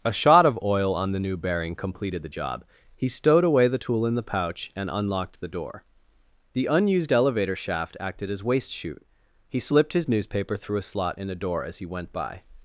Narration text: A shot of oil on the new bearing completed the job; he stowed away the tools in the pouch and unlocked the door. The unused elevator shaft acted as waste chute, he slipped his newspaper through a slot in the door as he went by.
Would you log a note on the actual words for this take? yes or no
yes